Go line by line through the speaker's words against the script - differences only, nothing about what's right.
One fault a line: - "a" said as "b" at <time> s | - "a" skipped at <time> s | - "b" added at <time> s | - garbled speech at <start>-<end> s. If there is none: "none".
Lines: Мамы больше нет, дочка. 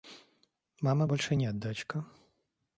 none